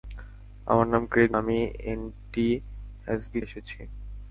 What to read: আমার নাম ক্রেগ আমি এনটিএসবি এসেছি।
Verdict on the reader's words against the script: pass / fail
pass